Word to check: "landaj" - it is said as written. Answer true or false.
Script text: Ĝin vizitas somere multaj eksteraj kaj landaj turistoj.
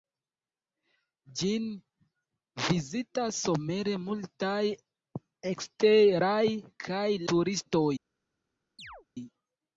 false